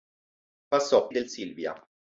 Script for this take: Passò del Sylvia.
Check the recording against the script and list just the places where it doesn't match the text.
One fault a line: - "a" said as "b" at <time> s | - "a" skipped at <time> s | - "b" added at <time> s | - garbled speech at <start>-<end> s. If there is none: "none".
none